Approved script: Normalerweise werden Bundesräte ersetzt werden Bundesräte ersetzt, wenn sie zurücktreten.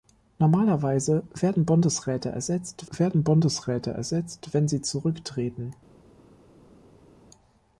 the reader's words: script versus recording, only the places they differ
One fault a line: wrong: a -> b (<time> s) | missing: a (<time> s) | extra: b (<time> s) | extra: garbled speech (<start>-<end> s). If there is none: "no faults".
no faults